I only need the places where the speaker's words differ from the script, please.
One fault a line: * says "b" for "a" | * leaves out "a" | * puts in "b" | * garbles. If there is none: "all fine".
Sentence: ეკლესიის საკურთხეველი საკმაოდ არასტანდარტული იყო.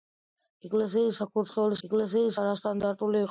* says "ეკლესიის" for "საკმაოდ"